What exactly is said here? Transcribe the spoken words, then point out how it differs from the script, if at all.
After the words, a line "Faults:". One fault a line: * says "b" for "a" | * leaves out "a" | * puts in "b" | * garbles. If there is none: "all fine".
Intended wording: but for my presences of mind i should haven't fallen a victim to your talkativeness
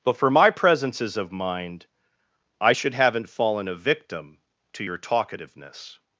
but for my presences of mind i should haven't fallen a victim to your talkativeness
Faults:
all fine